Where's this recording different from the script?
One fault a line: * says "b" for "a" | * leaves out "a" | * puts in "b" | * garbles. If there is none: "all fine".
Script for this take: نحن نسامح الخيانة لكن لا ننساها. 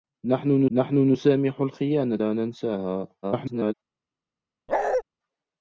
* puts in "نحن"
* leaves out "لكن"
* garbles